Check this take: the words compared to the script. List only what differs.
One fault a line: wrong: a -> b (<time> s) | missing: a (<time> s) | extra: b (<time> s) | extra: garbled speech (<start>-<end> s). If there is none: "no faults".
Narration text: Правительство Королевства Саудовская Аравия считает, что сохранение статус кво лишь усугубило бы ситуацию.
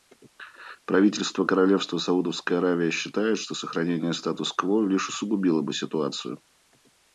no faults